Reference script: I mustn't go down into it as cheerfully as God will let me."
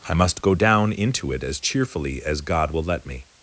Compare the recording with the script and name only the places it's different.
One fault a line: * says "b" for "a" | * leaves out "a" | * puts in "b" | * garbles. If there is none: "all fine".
* says "must" for "mustn't"